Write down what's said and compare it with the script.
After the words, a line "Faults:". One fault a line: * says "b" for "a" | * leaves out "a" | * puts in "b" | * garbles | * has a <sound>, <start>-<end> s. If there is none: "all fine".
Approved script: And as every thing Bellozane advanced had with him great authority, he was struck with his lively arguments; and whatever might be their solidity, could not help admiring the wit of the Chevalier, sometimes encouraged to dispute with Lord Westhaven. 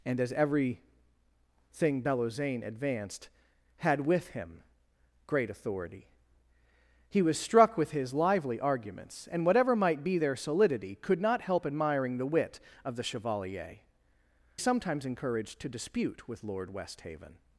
And as every thing Bellozane advanced had with him great authority, he was struck with his lively arguments; and whatever might be their solidity, could not help admiring the wit of the Chevalier, sometimes encouraged to dispute with Lord Westhaven.
Faults:
all fine